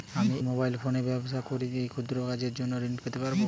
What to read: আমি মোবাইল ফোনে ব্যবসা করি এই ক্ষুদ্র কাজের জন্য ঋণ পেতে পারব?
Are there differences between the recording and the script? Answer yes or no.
no